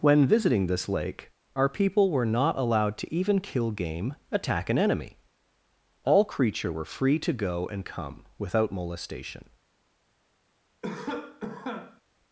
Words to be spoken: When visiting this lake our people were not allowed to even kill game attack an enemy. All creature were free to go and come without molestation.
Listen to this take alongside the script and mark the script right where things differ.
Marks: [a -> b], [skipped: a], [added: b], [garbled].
When visiting this lake our people were not allowed to even kill game attack an enemy. All creature were free to go and come without molestation.